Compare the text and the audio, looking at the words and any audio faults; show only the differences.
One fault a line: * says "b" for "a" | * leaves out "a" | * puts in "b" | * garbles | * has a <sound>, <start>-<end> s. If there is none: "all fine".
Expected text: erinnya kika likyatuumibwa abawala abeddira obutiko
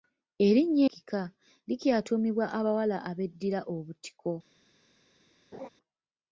* has a laugh, 5.5-5.7 s